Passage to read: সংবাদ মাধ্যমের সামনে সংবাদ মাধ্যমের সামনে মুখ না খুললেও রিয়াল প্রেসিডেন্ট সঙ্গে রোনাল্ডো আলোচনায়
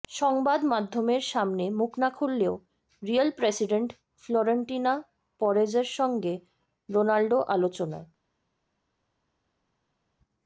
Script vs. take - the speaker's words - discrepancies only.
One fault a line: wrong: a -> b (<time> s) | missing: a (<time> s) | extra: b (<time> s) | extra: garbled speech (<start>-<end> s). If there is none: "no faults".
missing: সংবাদ মাধ্যমের সামনে (1.6 s)
extra: ফ্লোরেন্তিনো পেরেজের (4.2 s)